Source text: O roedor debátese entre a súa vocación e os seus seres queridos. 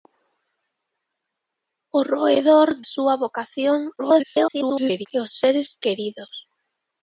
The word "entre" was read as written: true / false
false